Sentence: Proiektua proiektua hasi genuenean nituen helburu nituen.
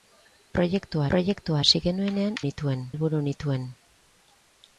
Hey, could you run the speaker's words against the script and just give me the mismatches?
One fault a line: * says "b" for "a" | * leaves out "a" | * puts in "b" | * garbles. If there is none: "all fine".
all fine